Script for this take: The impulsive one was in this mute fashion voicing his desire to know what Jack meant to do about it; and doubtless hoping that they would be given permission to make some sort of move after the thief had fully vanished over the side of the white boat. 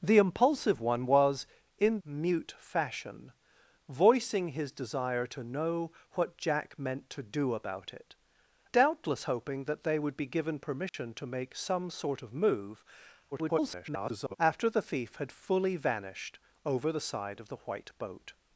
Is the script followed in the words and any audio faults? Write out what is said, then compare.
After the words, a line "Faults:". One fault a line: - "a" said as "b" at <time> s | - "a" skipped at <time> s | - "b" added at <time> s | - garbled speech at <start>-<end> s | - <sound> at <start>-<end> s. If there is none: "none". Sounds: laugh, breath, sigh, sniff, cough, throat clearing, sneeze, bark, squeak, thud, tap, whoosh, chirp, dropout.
The impulsive one was in mute fashion voicing his desire to know what Jack meant to do about it; doubtless hoping that they would be given permission to make some sort of move [garbled] after the thief had fully vanished over the side of the white boat.
Faults:
- "this" skipped at 2.0 s
- "and" skipped at 8.1 s
- dropout at 10.9-10.9 s
- garbled speech at 13.3-14.4 s